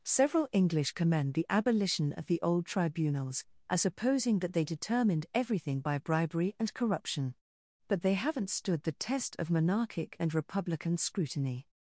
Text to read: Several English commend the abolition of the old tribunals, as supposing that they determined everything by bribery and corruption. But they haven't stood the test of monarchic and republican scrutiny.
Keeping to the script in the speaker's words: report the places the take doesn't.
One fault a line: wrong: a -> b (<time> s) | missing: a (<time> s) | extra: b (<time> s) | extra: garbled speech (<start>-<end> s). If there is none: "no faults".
no faults